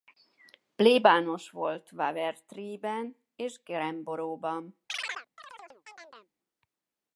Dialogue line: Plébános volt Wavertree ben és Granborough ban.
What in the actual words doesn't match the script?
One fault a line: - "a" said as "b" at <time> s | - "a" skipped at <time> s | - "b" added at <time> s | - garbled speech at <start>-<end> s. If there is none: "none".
none